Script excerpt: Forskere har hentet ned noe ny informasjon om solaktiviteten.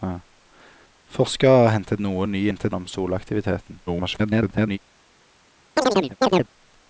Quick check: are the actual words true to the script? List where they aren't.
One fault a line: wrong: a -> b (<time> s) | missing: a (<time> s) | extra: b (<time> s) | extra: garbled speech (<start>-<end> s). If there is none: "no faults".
missing: ned (2.0 s)
wrong: informasjon -> hentet (2.5 s)
extra: garbled speech (3.9-4.8 s)